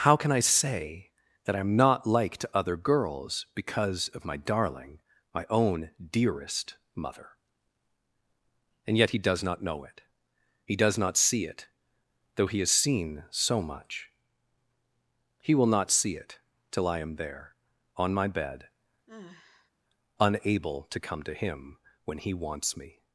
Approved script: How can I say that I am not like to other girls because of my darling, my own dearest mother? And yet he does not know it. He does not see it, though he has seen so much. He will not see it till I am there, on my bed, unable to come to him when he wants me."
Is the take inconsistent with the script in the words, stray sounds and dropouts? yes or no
yes